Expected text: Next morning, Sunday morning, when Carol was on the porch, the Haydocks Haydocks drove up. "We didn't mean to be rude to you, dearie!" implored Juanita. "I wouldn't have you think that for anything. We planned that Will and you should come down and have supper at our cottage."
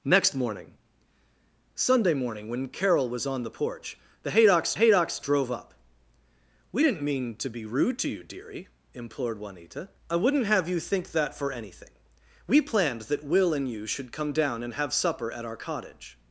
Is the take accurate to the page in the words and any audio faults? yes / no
yes